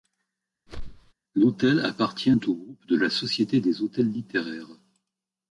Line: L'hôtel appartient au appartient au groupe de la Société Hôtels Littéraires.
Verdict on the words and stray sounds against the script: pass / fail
fail